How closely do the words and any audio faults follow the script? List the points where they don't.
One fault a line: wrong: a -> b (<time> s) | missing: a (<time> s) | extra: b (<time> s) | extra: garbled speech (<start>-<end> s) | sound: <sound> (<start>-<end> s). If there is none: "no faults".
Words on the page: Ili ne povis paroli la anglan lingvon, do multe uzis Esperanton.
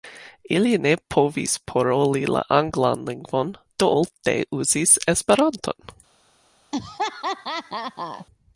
sound: laugh (6.7-8.3 s)